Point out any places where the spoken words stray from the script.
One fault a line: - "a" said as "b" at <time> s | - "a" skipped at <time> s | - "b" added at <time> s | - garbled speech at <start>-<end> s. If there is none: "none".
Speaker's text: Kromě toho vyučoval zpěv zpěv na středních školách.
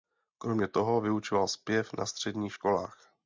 - "zpěv" skipped at 1.9 s